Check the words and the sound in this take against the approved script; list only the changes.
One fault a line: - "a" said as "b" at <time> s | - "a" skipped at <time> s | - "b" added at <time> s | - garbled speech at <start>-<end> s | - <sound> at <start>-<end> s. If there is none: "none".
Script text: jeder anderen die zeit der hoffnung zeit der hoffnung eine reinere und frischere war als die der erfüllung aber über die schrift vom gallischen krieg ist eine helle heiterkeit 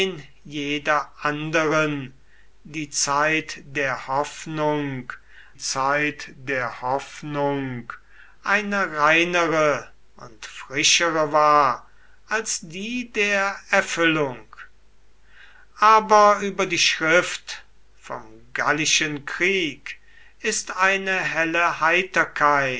none